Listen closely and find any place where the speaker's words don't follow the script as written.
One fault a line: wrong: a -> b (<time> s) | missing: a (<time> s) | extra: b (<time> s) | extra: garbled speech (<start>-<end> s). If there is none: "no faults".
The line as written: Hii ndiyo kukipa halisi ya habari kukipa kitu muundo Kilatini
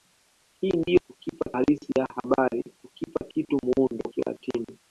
no faults